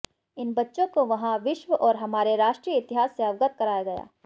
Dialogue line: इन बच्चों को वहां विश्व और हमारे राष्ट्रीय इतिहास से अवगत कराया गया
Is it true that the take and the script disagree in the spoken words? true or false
false